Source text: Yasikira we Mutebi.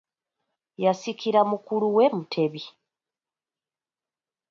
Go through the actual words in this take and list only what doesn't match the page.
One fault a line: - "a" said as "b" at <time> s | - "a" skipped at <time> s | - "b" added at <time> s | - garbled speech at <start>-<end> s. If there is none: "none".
- "mukulu" added at 1.5 s